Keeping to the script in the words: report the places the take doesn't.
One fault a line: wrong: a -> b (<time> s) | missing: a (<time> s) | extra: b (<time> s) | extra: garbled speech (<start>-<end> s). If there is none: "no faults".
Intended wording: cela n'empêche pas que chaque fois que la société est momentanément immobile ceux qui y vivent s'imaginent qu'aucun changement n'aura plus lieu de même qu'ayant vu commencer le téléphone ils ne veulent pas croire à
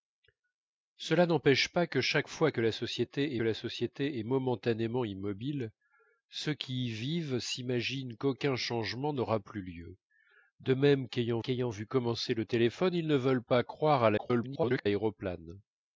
extra: la société (3.4 s)
extra: qu'ayant (11.4 s)
extra: garbled speech (14.2-14.9 s)